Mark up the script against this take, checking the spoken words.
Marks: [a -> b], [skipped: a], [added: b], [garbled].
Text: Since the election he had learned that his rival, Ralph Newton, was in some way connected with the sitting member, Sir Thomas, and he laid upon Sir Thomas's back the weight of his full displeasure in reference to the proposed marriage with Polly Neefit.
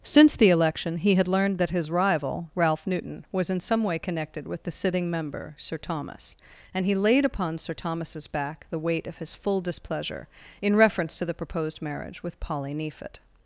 Since the election he had learned that his rival, Ralph Newton, was in some way connected with the sitting member, Sir Thomas, and he laid upon Sir Thomas's back the weight of his full displeasure in reference to the proposed marriage with Polly Neefit.